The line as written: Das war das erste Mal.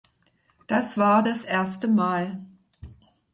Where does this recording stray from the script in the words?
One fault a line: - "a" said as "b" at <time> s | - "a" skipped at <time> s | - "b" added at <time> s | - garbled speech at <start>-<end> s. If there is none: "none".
none